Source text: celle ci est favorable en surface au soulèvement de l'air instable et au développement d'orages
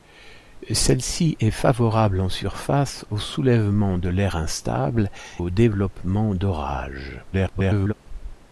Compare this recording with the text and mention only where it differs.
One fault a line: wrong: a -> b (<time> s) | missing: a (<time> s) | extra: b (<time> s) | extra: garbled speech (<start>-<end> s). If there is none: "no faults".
missing: et (5.1 s)
extra: garbled speech (7.3-7.9 s)